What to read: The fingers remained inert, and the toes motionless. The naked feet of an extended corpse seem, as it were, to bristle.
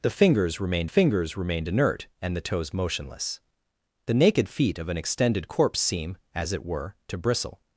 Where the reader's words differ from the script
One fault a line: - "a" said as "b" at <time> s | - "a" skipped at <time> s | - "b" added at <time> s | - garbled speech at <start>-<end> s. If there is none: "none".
- "fingers remained" added at 0.8 s